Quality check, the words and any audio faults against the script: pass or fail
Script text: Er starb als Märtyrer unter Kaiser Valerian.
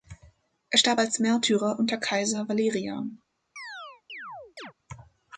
fail